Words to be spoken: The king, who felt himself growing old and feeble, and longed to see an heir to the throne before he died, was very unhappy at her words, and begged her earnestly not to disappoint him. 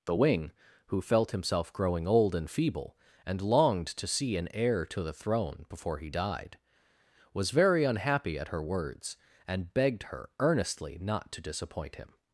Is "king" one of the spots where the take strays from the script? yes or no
yes